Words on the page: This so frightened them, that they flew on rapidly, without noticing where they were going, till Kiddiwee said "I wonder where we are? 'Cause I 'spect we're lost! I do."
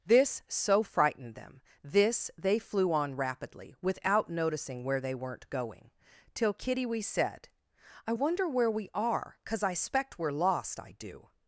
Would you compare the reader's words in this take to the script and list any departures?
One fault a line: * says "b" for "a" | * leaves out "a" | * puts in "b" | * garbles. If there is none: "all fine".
* says "this" for "that"
* says "weren't" for "were"